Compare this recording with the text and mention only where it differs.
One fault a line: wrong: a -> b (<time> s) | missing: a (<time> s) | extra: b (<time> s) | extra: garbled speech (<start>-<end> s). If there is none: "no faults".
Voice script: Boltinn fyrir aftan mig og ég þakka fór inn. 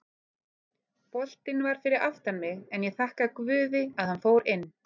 extra: var (1.7 s)
wrong: og -> en (2.8 s)
extra: guði að hann (3.4 s)